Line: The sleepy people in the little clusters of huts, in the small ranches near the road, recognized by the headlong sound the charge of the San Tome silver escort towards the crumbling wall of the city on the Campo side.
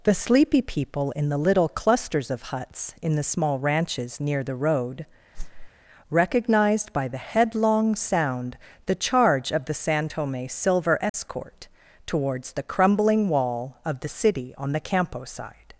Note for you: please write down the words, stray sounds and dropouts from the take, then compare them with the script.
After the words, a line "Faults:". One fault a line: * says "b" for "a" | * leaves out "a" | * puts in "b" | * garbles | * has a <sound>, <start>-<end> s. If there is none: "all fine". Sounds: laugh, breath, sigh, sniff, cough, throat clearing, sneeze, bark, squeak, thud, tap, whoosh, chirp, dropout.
The sleepy people in the little clusters of huts, in the small ranches near the road, recognized by the headlong sound the charge of the San Tome silver escort towards the crumbling wall of the city on the Campo side.
Faults:
* has a whoosh, 5.3-5.7 s
* has a dropout, 11.1-11.1 s